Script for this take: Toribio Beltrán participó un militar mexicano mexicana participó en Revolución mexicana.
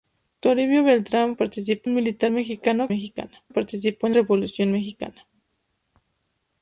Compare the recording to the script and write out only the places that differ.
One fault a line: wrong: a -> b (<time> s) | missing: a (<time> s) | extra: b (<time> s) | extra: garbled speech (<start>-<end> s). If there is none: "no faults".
no faults